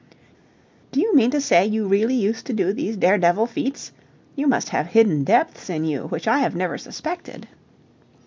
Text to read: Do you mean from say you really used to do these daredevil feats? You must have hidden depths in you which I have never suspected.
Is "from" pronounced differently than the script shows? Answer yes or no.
yes